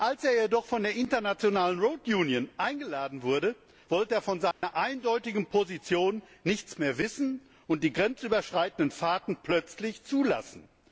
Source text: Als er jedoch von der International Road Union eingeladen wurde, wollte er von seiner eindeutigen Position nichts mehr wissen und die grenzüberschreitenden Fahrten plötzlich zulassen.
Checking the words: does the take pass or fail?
pass